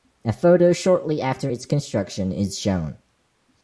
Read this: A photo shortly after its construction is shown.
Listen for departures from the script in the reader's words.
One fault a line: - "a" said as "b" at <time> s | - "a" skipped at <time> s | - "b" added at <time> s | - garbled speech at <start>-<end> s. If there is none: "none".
none